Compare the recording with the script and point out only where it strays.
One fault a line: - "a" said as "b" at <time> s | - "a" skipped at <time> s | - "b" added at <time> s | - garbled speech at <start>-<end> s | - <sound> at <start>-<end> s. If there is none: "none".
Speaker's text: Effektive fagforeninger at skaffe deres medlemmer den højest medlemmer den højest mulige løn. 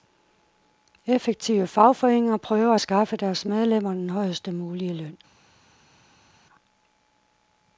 - "prøver" added at 2.4 s
- "medlemmer den højest" skipped at 4.5 s